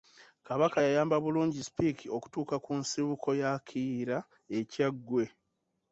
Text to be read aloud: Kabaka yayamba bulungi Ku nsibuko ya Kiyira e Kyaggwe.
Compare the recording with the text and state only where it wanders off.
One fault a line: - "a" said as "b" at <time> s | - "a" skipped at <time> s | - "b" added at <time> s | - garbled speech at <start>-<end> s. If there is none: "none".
- "Speke okutuuka" added at 1.7 s